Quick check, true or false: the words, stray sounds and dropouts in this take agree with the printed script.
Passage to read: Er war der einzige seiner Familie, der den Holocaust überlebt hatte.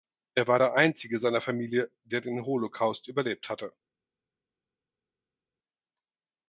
true